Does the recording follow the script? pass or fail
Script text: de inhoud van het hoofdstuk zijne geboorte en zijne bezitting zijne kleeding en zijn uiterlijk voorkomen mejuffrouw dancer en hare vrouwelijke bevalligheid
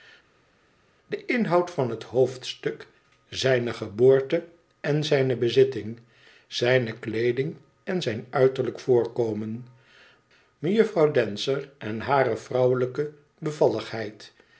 pass